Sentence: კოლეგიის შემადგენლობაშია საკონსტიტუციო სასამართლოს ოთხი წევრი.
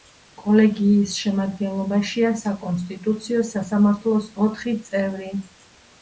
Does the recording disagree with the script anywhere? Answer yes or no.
no